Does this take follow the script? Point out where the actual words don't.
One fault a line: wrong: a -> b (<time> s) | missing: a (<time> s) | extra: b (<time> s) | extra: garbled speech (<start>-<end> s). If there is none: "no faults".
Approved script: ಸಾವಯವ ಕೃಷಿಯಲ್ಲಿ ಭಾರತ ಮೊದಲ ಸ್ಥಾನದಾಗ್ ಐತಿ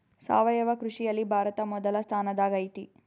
no faults